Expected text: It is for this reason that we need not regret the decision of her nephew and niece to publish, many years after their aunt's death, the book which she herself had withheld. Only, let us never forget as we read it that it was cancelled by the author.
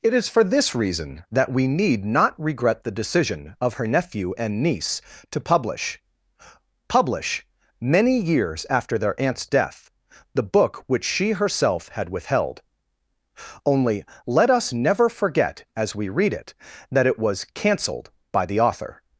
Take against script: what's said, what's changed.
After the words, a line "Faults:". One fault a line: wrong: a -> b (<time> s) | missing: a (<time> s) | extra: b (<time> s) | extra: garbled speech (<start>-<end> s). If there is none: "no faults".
It is for this reason that we need not regret the decision of her nephew and niece to publish publish, many years after their aunt's death, the book which she herself had withheld. Only, let us never forget as we read it that it was cancelled by the author.
Faults:
extra: publish (6.9 s)